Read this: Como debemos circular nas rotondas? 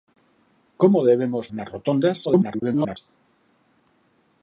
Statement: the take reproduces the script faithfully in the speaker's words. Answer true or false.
false